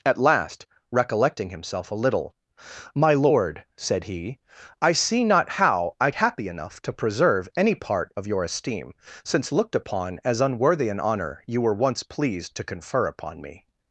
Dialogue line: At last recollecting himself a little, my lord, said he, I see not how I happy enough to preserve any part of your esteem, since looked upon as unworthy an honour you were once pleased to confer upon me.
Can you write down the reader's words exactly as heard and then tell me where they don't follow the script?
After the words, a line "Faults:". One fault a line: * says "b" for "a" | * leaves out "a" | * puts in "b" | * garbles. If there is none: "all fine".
At last recollecting himself a little, my lord, said he, I see not how I happy enough to preserve any part of your esteem, since looked upon as unworthy an honour you were once pleased to confer upon me.
Faults:
all fine